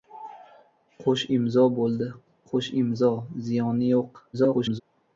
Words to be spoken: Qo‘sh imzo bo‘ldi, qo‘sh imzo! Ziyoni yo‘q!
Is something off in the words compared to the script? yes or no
yes